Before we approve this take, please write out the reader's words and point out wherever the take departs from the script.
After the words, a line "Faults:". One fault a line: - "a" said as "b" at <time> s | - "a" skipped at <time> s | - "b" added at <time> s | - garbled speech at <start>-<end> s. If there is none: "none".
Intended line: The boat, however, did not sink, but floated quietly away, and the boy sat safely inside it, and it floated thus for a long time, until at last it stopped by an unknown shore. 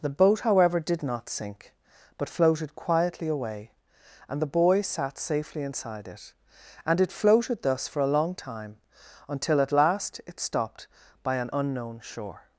The boat, however, did not sink, but floated quietly away, and the boy sat safely inside it, and it floated thus for a long time, until at last it stopped by an unknown shore.
Faults:
none